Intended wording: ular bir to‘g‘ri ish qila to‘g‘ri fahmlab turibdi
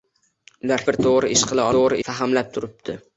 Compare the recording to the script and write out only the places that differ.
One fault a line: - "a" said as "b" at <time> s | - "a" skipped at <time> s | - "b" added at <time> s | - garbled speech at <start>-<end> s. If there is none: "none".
none